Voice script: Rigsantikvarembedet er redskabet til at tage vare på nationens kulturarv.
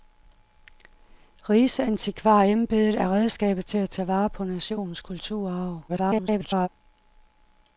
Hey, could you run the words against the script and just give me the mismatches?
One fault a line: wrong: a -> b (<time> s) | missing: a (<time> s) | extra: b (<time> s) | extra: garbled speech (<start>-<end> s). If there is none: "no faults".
extra: garbled speech (5.9-6.7 s)